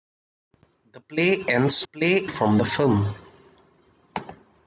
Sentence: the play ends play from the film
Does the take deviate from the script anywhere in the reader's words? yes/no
no